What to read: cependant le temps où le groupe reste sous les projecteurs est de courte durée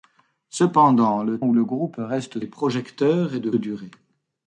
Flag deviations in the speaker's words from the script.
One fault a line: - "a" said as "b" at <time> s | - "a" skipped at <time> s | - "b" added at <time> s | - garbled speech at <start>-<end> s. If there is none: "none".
- "temps" skipped at 1.4 s
- "sous" skipped at 2.4 s
- "courte" skipped at 3.5 s